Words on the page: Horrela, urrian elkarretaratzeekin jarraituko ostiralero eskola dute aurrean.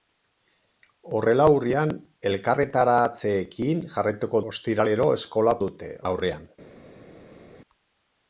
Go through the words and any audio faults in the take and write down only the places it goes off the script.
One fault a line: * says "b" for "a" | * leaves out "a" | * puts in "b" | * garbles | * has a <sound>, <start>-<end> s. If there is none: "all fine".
all fine